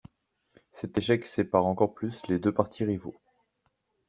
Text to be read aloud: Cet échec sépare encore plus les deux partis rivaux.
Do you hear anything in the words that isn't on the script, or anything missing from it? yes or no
no